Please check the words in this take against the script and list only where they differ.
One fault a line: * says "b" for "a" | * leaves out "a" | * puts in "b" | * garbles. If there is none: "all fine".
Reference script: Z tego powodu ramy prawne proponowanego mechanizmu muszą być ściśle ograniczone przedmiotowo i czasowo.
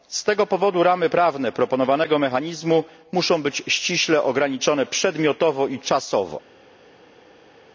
all fine